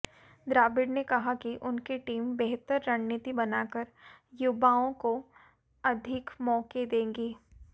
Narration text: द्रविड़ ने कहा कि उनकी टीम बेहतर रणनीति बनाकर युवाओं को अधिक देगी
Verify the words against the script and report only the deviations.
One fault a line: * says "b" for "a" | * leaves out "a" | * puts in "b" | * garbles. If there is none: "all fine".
* puts in "मौके"